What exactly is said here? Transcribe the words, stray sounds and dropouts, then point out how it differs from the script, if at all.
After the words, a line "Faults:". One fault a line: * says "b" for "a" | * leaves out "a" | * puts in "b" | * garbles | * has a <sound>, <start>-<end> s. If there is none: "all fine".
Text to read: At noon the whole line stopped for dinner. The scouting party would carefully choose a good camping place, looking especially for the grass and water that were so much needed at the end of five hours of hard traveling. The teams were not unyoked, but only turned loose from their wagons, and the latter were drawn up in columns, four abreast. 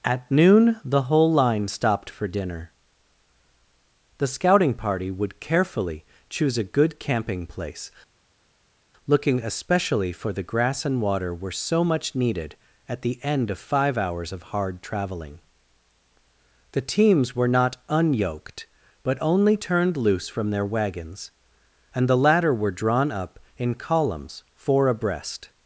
At noon the whole line stopped for dinner. The scouting party would carefully choose a good camping place, looking especially for the grass and water were so much needed at the end of five hours of hard traveling. The teams were not unyoked, but only turned loose from their wagons, and the latter were drawn up in columns, four abreast.
Faults:
* leaves out "that"